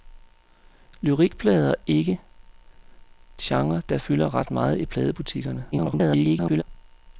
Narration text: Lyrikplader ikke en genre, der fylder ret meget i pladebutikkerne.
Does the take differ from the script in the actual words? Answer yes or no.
yes